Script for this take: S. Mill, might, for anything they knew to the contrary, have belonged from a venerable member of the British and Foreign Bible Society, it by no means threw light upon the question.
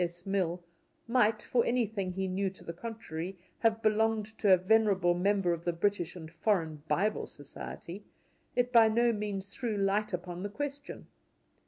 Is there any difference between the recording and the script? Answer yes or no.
yes